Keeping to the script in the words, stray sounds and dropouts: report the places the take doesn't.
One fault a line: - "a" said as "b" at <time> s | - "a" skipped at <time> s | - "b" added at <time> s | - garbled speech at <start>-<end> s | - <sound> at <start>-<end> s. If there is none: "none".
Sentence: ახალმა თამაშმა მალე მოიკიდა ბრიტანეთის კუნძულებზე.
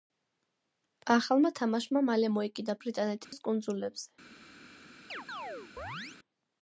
- dropout at 3.2-3.3 s
- chirp at 5.1-6.2 s